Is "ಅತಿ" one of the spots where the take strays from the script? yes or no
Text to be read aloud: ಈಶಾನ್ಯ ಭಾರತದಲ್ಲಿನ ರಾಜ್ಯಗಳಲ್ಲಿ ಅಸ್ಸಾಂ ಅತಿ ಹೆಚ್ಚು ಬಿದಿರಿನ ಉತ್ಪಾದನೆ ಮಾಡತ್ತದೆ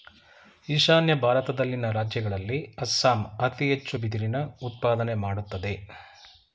no